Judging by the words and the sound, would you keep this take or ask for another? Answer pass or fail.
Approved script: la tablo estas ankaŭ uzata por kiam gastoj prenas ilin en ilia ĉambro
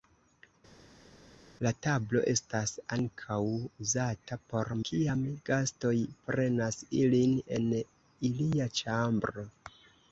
pass